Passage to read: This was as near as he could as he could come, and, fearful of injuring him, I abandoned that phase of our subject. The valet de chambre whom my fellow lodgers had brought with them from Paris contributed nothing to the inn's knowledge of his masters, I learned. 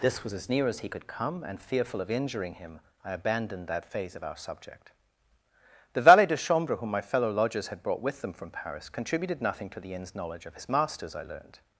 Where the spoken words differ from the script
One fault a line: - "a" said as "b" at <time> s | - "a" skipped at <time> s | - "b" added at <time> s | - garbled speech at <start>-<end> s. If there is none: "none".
- "as he could" skipped at 1.1 s